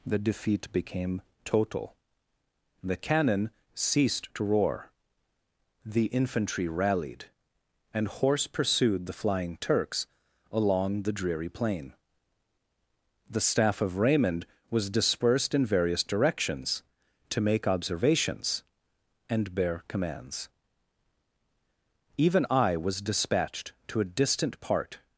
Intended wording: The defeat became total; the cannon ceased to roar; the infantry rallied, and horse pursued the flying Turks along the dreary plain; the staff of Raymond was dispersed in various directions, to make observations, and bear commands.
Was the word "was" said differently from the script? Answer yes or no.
no